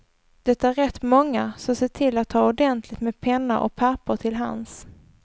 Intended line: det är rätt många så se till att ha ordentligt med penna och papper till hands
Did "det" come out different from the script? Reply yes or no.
no